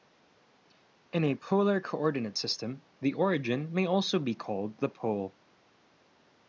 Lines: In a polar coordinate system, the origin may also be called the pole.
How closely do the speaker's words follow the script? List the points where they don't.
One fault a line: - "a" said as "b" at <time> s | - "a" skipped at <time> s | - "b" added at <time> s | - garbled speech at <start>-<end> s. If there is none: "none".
none